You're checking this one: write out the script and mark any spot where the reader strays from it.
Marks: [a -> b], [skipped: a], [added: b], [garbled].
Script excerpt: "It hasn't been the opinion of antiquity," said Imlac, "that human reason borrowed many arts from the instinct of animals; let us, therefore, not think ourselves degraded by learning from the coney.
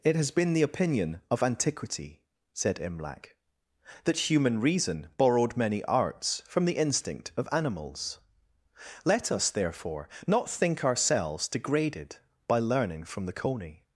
"It [hasn't -> has] been the opinion of antiquity," said Imlac, "that human reason borrowed many arts from the instinct of animals; let us, therefore, not think ourselves degraded by learning from the coney.